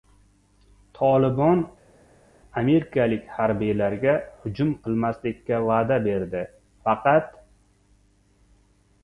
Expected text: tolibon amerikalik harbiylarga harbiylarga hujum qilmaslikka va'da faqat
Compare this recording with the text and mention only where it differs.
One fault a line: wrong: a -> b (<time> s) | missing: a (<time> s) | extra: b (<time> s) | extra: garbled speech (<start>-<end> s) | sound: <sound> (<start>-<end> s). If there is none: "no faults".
missing: harbiylarga (4.2 s)
extra: berdi (6.1 s)